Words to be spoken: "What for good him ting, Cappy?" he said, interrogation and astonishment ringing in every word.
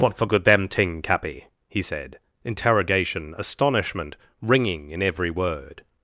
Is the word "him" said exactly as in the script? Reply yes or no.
no